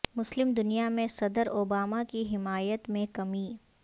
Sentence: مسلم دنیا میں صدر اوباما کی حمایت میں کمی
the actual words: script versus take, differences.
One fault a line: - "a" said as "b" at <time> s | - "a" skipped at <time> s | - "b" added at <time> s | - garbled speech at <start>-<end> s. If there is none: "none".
none